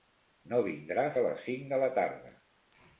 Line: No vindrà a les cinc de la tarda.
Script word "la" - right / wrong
right